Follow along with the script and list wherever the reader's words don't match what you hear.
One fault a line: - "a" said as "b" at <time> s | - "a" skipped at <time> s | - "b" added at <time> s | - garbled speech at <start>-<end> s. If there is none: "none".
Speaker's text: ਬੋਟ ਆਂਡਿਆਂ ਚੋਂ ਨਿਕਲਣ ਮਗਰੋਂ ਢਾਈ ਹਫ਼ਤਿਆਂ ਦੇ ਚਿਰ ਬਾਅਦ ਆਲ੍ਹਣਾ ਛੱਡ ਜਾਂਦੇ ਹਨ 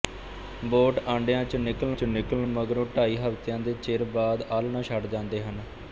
- "ਚੋਂ ਨਿਕਲਣ" added at 1.9 s